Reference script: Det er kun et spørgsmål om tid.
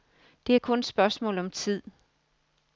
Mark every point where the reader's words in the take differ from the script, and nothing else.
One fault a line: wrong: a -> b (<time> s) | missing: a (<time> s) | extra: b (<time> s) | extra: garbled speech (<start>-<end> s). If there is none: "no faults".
no faults